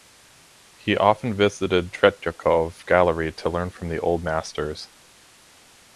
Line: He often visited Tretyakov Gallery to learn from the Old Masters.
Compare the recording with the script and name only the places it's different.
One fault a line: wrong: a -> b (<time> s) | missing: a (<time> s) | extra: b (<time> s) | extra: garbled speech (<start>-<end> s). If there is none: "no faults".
no faults